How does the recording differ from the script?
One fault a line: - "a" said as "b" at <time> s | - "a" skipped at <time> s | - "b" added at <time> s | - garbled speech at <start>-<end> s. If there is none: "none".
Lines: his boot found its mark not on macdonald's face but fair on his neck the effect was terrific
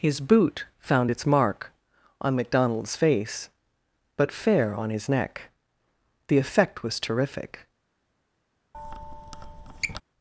- "not" skipped at 1.7 s